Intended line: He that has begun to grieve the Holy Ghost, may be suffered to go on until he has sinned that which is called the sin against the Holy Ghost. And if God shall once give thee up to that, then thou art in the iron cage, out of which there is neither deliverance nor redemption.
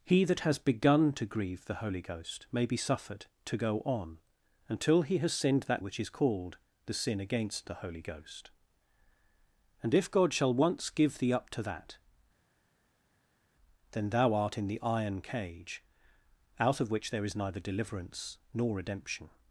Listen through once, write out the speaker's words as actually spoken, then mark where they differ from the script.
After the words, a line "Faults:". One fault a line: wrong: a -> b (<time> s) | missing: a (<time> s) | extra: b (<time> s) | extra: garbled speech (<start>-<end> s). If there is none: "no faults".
He that has begun to grieve the Holy Ghost, may be suffered to go on until he has sinned that which is called the sin against the Holy Ghost. And if God shall once give thee up to that, then thou art in the iron cage, out of which there is neither deliverance nor redemption.
Faults:
no faults